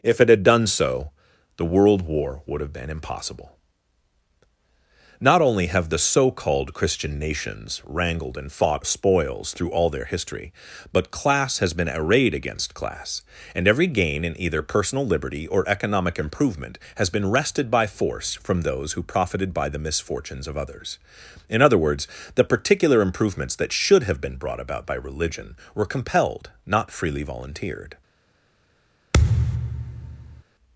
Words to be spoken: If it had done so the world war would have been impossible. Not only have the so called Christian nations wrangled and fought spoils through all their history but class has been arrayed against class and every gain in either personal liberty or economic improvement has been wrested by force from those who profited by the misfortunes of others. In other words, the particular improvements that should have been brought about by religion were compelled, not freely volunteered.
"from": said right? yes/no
yes